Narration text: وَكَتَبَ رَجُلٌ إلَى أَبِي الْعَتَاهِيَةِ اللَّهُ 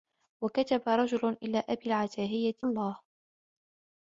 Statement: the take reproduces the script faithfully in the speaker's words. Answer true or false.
true